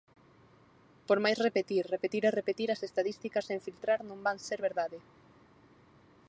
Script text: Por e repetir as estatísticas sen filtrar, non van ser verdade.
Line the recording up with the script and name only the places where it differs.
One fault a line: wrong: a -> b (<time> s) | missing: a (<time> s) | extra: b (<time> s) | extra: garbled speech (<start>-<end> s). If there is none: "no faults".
extra: máis repetir repetir (1.2 s)